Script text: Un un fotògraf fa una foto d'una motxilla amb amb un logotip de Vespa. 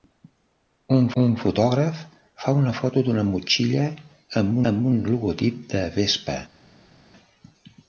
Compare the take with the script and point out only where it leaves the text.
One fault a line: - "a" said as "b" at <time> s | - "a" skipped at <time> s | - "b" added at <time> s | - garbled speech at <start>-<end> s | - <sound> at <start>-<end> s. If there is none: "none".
none